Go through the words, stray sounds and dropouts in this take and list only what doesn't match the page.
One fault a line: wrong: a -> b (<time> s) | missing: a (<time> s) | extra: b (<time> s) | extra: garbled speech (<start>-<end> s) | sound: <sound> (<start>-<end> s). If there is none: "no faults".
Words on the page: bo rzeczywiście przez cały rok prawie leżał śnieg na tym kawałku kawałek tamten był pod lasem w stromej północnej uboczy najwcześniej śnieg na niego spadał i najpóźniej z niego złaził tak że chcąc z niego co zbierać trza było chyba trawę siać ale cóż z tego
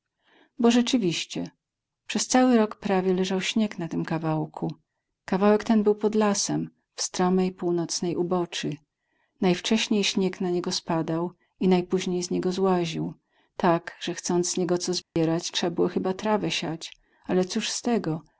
wrong: tamten -> ten (5.6 s)
sound: dropout (15.0-15.2 s)